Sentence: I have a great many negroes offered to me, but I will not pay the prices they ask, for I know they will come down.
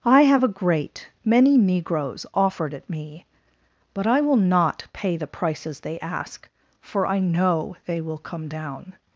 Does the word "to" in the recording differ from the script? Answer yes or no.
yes